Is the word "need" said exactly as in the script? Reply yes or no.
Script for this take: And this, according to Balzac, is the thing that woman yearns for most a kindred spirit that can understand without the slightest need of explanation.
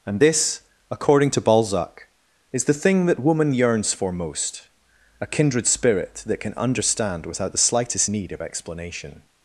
yes